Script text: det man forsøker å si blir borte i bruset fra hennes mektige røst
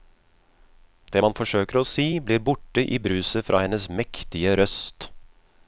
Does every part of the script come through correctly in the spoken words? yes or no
yes